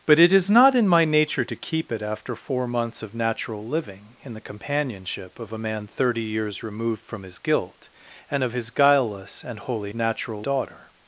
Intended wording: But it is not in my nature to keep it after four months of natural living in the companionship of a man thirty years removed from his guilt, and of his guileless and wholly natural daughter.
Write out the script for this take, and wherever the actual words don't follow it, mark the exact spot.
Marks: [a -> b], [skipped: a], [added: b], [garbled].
But it is not in my nature to keep it after four months of natural living in the companionship of a man thirty years removed from his guilt, and of his guileless and wholly natural daughter.